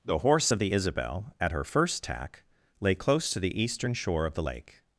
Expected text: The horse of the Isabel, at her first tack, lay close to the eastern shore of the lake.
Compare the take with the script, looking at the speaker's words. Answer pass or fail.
pass